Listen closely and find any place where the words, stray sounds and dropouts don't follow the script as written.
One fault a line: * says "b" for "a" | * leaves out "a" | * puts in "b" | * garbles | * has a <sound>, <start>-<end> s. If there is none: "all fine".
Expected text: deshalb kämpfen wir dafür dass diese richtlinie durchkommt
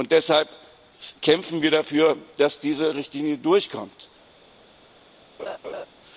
* has a laugh, 5.4-5.9 s